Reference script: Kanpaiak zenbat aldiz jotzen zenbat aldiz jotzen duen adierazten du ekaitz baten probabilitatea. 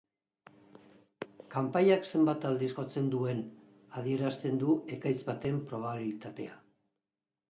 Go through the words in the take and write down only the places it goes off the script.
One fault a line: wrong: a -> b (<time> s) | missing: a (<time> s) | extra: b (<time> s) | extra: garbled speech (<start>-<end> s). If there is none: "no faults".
missing: zenbat aldiz jotzen (3.1 s)